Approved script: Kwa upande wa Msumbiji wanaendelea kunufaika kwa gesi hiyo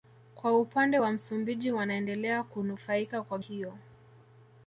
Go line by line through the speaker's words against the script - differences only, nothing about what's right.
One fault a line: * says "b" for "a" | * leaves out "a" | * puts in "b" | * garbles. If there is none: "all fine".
* leaves out "gesi"